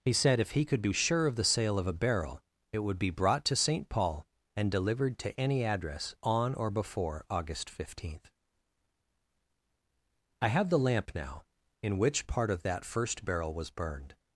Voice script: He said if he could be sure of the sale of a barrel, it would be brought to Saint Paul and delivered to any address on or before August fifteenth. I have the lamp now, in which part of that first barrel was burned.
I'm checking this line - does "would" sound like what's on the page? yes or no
yes